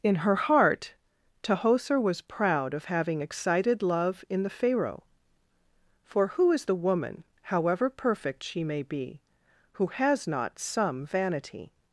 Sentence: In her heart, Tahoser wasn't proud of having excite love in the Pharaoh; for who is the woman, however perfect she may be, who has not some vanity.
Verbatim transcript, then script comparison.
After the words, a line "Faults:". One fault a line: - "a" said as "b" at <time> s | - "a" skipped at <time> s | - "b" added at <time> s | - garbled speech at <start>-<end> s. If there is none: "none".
In her heart, Tahoser was proud of having excited love in the Pharaoh; for who is the woman, however perfect she may be, who has not some vanity.
Faults:
- "wasn't" said as "was" at 2.0 s
- "excite" said as "excited" at 3.2 s